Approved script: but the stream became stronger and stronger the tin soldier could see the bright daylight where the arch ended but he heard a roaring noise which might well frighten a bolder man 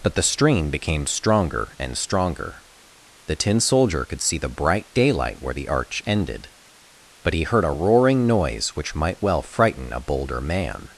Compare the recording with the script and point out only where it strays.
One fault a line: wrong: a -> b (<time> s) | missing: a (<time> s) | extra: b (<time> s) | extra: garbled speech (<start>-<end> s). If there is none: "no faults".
no faults